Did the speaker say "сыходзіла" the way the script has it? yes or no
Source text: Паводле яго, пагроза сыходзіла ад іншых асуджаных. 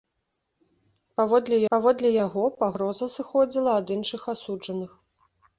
yes